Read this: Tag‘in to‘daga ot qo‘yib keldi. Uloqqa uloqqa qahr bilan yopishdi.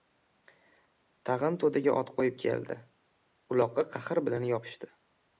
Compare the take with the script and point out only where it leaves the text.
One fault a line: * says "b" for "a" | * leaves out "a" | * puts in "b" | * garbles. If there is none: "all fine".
* leaves out "uloqqa"